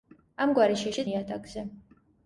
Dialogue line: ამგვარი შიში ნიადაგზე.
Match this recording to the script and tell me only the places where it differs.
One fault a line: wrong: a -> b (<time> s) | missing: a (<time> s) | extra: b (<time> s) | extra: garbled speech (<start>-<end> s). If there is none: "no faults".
no faults